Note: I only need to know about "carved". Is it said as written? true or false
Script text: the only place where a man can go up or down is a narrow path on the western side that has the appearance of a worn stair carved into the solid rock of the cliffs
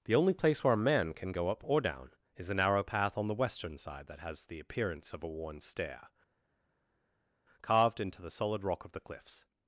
true